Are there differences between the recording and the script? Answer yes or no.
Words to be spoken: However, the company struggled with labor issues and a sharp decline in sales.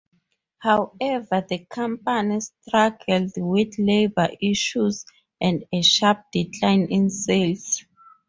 no